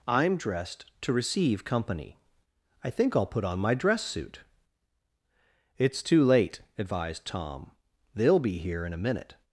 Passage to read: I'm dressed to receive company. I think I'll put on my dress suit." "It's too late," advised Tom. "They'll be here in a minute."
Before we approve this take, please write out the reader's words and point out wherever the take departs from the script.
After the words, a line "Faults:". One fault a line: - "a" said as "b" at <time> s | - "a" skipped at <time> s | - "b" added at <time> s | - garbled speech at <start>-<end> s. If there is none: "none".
I'm dressed to receive company. I think I'll put on my dress suit." "It's too late," advised Tom. "They'll be here in a minute."
Faults:
none